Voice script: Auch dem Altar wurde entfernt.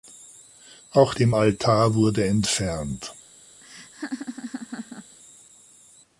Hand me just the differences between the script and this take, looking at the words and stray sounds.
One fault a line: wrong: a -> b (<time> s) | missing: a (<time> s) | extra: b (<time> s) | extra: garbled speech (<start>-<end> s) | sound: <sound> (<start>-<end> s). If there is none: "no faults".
sound: laugh (3.6-5.2 s)